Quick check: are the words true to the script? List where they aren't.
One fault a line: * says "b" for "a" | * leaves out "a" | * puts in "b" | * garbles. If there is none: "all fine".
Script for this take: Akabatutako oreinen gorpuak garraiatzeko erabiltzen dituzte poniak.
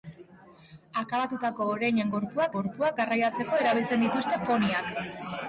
* puts in "gorpuak"